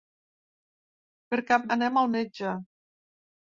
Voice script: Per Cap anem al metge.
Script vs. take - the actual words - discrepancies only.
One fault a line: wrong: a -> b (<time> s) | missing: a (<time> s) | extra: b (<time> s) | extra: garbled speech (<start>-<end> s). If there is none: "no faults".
no faults